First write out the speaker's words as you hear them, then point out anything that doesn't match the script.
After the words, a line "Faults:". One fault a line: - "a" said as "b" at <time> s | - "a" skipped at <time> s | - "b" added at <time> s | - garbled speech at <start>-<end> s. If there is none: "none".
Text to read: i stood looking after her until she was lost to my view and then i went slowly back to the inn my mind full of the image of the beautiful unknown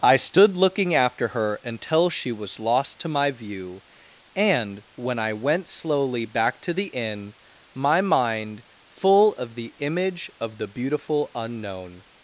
i stood looking after her until she was lost to my view and when i went slowly back to the inn my mind full of the image of the beautiful unknown
Faults:
- "then" said as "when" at 5.0 s